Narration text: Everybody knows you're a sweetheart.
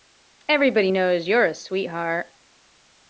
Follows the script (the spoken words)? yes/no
yes